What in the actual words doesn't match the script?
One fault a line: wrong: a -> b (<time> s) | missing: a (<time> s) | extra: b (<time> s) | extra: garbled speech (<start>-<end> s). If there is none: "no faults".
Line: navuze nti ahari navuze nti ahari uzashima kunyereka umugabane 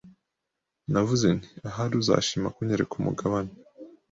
missing: navuze nti ahari (1.9 s)